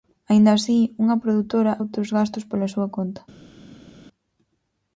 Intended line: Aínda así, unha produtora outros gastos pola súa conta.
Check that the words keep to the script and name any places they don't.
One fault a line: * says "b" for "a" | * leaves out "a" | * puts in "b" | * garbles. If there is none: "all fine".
all fine